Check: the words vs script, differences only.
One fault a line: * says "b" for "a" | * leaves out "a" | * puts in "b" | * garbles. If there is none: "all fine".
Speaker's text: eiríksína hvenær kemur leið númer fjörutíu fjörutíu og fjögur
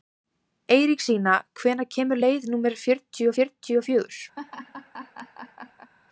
all fine